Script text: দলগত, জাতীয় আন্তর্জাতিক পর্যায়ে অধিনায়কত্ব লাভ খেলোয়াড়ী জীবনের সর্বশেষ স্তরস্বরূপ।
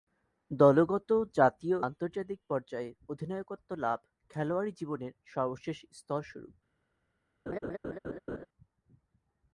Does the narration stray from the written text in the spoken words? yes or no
no